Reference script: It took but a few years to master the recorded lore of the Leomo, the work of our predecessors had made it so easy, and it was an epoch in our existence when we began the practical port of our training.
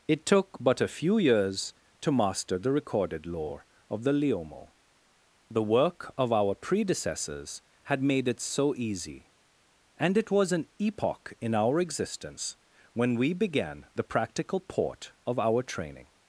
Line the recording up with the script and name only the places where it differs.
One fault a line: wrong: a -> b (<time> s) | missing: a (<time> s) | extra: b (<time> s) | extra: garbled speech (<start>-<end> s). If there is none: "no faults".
no faults